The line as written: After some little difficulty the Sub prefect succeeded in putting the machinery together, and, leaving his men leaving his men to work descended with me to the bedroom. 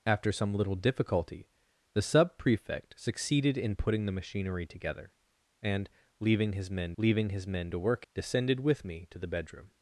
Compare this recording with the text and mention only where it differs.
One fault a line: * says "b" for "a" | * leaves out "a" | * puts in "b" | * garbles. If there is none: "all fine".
all fine